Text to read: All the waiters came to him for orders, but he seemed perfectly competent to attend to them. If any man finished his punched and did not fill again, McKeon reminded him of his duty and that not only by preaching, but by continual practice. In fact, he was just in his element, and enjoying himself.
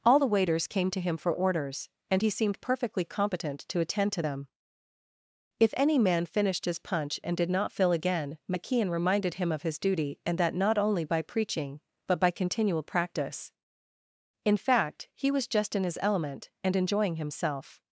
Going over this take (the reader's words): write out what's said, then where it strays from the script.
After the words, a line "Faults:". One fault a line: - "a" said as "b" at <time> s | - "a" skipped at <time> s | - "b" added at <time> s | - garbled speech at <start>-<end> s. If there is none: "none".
All the waiters came to him for orders, and he seemed perfectly competent to attend to them. If any man finished his punch and did not fill again, McKeon reminded him of his duty and that not only by preaching, but by continual practice. In fact, he was just in his element, and enjoying himself.
Faults:
- "but" said as "and" at 2.1 s
- "punched" said as "punch" at 6.8 s